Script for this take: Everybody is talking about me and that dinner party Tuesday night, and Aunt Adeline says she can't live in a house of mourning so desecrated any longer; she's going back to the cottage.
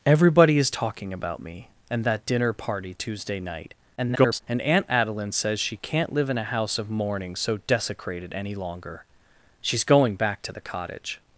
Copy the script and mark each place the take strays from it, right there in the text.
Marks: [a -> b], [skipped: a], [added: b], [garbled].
Everybody is talking about me and that dinner party Tuesday night, [garbled] and Aunt Adeline says she can't live in a house of mourning so desecrated any longer; she's going back to the cottage.